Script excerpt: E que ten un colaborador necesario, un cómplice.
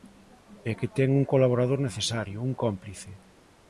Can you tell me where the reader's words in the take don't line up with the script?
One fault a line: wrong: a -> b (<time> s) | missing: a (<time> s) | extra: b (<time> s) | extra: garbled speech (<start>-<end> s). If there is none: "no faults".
no faults